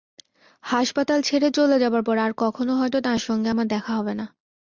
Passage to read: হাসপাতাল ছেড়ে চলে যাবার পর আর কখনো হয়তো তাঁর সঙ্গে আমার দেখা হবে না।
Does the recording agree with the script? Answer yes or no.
yes